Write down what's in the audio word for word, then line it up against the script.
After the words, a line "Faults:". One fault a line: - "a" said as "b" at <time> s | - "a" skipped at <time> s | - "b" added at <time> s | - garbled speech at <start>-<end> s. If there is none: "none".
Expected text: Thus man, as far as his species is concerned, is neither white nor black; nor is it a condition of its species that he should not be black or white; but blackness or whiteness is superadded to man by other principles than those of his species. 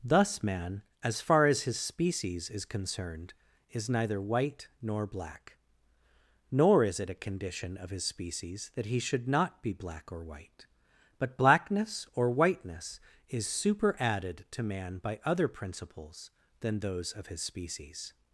Thus man, as far as his species is concerned, is neither white nor black; nor is it a condition of his species that he should not be black or white; but blackness or whiteness is superadded to man by other principles than those of his species.
Faults:
- "its" said as "his" at 7.9 s